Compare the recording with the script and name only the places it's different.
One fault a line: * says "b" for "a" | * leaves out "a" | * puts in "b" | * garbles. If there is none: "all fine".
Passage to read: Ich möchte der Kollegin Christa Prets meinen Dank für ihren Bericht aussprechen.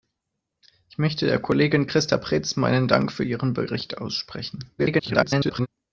* garbles